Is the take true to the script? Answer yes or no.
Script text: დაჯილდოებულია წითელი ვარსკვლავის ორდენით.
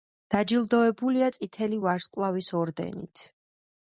yes